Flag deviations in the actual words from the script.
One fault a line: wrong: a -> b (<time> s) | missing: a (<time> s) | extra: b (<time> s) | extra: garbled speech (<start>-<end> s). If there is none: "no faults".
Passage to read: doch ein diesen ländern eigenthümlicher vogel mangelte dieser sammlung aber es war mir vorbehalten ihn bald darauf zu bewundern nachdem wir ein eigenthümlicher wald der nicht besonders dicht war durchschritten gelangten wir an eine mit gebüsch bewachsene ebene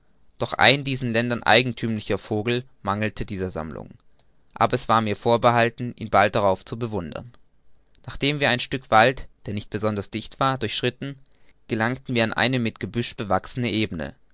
wrong: eigenthümlicher -> stück (8.6 s)